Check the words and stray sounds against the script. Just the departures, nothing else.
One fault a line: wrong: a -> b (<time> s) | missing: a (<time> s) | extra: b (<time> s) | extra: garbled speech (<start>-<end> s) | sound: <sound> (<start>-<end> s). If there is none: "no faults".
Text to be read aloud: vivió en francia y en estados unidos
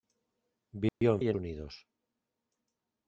sound: dropout (0.9-1.0 s)
missing: francia (1.2 s)
missing: estados (1.4 s)